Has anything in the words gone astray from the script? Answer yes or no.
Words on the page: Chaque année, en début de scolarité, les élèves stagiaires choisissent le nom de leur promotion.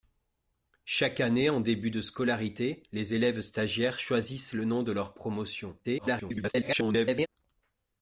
yes